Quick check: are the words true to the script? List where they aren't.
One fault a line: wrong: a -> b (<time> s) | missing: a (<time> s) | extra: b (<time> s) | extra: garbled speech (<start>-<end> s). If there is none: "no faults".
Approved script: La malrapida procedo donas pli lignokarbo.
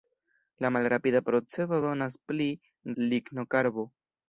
no faults